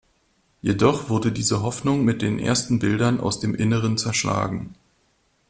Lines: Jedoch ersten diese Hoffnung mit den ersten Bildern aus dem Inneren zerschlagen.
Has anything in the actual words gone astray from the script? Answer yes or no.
yes